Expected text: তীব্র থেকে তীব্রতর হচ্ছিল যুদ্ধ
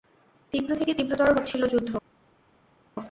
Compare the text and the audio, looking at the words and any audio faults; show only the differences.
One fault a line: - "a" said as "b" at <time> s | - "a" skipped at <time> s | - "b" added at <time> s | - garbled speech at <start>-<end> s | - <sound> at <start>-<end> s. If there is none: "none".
none